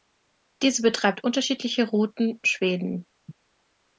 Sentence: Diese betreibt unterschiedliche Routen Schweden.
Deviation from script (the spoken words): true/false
false